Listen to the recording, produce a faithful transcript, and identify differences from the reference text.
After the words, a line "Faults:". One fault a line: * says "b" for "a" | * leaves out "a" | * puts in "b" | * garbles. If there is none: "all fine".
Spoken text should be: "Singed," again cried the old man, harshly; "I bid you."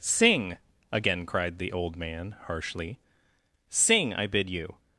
"Sing," again cried the old man, harshly; "sing, I bid you."
Faults:
* says "Sing" for "Singed"
* puts in "sing"